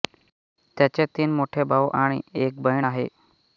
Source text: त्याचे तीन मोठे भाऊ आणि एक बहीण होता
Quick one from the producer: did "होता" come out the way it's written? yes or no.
no